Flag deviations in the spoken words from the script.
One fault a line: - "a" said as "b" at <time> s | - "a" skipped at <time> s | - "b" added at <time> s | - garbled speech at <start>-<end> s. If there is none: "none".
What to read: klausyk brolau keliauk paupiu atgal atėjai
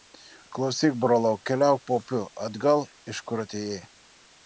- "iš kur" added at 3.1 s